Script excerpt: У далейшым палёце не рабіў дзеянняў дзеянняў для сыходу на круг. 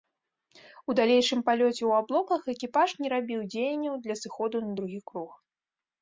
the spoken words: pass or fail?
fail